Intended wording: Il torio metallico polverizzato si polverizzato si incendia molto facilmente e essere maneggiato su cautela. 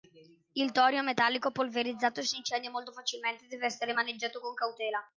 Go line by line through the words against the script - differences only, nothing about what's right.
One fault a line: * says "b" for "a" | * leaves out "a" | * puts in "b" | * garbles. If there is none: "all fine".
* leaves out "polverizzato si"
* puts in "deve"
* says "con" for "su"